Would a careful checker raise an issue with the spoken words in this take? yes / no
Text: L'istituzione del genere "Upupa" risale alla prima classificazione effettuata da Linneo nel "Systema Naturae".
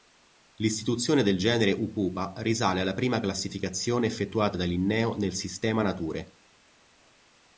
no